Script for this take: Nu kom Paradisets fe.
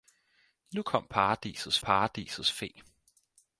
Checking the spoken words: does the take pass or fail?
fail